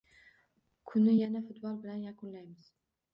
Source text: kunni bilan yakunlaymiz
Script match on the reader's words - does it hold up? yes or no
no